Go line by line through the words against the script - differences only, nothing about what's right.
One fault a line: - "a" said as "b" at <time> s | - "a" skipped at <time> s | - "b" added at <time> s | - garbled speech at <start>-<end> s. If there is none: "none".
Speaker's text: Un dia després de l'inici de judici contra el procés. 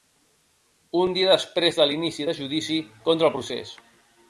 none